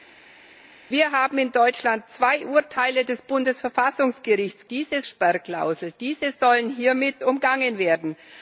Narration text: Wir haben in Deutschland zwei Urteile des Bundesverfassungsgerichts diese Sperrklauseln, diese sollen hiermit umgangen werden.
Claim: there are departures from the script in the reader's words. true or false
false